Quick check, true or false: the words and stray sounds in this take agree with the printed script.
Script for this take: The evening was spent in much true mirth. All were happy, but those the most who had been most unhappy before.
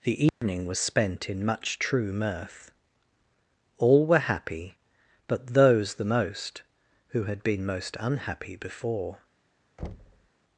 false